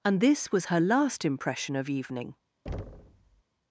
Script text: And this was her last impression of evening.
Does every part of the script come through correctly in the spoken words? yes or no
yes